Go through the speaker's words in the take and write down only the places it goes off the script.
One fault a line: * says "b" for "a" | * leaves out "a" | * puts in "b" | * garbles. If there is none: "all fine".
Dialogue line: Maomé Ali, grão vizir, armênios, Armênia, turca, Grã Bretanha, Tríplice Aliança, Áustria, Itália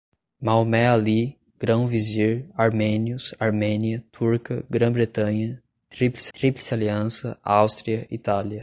* puts in "Tríplice"